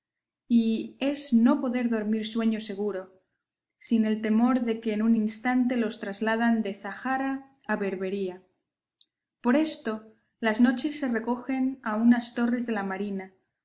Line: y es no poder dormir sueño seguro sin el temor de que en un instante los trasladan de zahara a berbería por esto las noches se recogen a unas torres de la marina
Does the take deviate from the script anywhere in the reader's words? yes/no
no